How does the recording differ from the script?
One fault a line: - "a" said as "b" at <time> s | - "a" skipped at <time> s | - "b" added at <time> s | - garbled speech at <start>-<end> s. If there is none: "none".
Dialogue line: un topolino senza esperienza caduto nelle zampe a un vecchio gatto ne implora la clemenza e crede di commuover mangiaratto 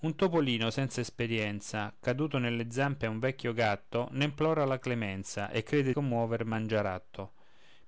- "di" skipped at 5.9 s